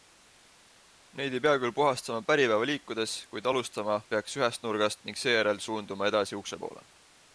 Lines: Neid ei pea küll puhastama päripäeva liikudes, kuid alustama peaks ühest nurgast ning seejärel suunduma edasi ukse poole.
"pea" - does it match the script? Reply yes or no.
yes